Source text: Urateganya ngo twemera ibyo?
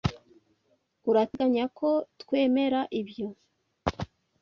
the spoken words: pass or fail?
fail